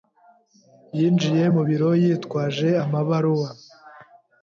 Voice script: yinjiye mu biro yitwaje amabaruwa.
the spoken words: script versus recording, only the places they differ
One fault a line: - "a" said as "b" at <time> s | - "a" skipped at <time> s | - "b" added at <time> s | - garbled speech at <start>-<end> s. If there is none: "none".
none